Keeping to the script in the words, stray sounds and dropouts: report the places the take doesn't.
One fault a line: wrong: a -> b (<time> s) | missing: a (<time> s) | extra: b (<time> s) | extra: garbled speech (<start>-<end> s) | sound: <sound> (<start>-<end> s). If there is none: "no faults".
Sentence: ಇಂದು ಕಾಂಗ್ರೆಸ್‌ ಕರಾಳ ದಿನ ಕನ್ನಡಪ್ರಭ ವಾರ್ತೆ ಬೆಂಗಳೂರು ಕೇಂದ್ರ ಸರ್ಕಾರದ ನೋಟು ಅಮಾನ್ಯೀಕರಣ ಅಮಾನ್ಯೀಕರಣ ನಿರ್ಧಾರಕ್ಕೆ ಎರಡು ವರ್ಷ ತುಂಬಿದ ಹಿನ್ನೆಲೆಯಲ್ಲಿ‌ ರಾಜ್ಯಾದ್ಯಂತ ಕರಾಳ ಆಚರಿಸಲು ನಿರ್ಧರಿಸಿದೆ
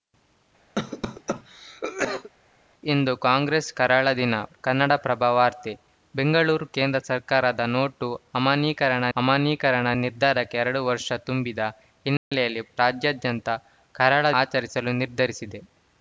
sound: cough (0.7-2.3 s)
sound: dropout (12.2-12.3 s)